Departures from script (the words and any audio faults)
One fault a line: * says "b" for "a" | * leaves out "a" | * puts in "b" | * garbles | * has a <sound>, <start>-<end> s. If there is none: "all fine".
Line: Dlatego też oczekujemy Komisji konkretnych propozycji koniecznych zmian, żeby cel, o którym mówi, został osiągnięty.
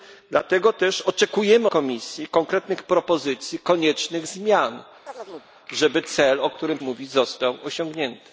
* has a chirp, 5.1-5.5 s